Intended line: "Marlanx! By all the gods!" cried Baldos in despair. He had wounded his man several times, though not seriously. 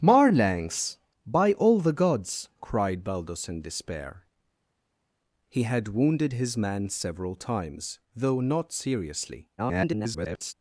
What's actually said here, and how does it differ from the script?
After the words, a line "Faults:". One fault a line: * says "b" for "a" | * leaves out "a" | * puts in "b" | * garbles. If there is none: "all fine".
"Marlanx! By all the gods!" cried Baldos in despair. He had wounded his man several times, though not seriously. [garbled]
Faults:
* garbles